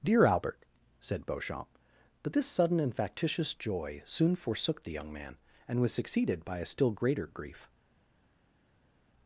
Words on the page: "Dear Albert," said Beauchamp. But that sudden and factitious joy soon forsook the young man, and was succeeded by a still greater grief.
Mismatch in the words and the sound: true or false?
true